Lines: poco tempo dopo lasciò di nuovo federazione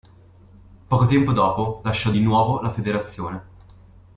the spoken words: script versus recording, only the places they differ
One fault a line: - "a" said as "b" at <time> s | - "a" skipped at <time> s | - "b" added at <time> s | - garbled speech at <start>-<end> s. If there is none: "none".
- "la" added at 2.6 s